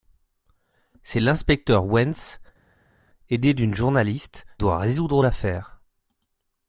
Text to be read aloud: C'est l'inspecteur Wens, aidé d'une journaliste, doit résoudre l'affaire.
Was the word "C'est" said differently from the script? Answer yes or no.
no